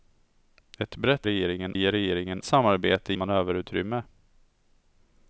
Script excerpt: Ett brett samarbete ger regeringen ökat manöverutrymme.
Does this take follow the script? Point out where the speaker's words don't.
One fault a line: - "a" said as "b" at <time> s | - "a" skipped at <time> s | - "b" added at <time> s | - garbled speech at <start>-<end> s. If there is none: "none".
- "samarbete" said as "regeringen" at 1.2 s
- "ökat" said as "samarbete" at 2.4 s